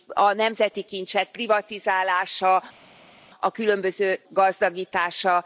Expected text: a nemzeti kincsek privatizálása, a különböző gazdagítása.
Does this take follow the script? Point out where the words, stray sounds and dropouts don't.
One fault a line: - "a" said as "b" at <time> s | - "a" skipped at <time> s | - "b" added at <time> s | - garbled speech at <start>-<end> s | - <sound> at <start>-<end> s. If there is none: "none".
none